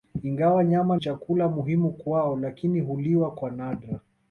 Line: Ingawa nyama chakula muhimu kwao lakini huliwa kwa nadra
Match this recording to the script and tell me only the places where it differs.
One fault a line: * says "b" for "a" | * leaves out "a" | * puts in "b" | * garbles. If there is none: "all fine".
all fine